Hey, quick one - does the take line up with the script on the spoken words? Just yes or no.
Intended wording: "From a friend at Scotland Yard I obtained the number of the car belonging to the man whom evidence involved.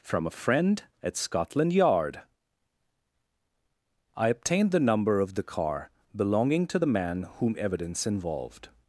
yes